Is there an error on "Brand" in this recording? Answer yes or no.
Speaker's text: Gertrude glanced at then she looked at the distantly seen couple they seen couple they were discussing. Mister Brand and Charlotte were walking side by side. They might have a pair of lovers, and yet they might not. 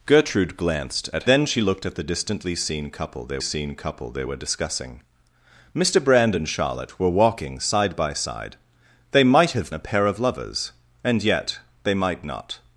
no